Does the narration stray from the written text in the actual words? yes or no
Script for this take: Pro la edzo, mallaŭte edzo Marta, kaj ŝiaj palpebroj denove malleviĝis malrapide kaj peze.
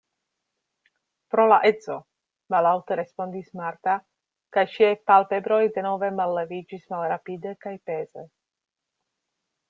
yes